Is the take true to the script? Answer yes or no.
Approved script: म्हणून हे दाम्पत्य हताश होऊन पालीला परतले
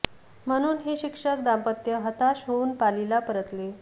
no